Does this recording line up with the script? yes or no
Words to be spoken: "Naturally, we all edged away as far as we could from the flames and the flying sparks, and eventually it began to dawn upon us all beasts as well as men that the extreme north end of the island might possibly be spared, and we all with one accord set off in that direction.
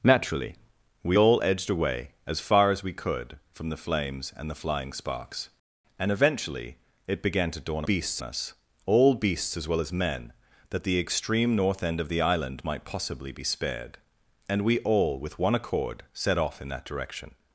no